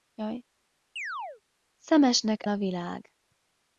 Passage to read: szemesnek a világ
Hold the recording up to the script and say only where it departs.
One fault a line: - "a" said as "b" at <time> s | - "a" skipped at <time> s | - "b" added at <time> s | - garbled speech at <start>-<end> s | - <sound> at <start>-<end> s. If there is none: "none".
- chirp at 1.0-1.4 s